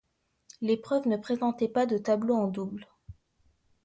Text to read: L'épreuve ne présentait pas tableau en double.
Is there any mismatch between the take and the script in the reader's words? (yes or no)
yes